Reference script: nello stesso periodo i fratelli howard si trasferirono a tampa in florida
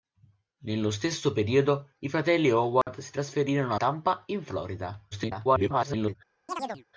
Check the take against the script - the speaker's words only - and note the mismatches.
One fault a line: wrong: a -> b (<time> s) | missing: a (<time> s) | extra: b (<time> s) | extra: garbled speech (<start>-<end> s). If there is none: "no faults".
missing: a (3.8 s)
extra: garbled speech (5.1-6.2 s)